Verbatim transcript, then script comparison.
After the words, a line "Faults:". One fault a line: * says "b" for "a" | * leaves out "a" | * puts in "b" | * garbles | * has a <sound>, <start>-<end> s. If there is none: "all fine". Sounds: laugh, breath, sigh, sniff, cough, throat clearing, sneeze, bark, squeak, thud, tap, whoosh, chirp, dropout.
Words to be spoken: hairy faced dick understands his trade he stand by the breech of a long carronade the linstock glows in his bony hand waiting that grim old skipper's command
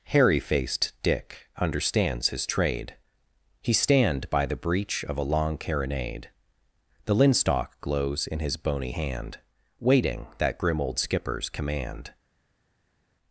hairy faced dick understands his trade he stand by the breech of a long carronade the linstock glows in his bony hand waiting that grim old skipper's command
Faults:
all fine